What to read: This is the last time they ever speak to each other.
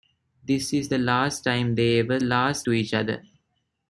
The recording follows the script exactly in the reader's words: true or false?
false